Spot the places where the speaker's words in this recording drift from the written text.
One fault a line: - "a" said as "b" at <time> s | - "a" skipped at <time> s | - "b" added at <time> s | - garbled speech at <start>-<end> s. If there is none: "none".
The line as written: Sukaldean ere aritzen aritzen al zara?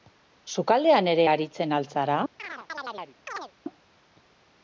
- "aritzen" skipped at 1.7 s